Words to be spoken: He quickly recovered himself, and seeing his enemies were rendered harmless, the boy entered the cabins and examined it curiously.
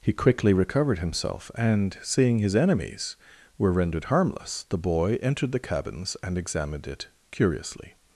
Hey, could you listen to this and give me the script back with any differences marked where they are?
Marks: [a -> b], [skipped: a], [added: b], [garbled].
He quickly recovered himself, and seeing his enemies were rendered harmless, the boy entered the cabins and examined it curiously.